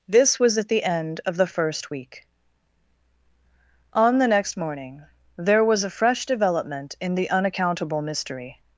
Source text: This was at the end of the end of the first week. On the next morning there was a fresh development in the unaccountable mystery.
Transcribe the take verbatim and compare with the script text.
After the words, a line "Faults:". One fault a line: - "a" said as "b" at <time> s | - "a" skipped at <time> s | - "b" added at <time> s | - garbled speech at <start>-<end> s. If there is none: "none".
This was at the end of the first week. On the next morning there was a fresh development in the unaccountable mystery.
Faults:
- "end of the" skipped at 1.4 s